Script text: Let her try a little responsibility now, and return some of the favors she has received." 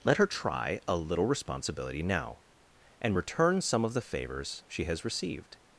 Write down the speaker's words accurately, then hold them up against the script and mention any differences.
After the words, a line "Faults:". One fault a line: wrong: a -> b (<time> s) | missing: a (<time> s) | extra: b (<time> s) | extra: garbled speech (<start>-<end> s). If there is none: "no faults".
Let her try a little responsibility now, and return some of the favors she has received."
Faults:
no faults